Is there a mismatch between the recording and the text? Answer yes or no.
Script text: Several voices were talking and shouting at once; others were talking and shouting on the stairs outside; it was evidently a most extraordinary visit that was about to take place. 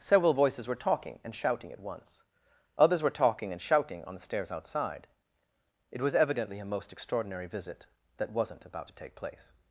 yes